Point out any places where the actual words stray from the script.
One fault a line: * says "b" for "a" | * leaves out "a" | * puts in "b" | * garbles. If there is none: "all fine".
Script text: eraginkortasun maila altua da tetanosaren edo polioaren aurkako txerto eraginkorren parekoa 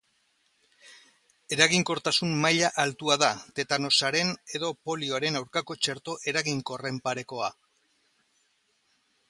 all fine